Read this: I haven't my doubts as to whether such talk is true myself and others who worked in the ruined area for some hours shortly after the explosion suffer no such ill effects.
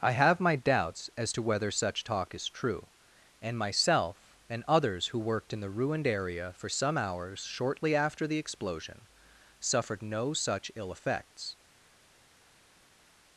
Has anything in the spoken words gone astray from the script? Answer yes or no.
yes